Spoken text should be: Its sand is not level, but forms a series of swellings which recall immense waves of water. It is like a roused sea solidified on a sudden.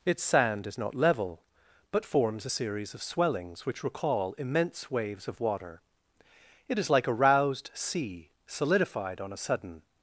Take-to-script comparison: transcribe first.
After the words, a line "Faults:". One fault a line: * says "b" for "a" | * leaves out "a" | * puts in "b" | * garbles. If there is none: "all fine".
Its sand is not level, but forms a series of swellings which recall immense waves of water. It is like a roused sea solidified on a sudden.
Faults:
all fine